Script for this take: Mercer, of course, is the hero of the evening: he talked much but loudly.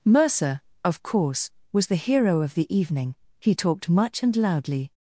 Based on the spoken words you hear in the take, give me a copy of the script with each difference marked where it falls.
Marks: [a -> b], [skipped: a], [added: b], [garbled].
Mercer, of course, [is -> was] the hero of the evening: he talked much [but -> and] loudly.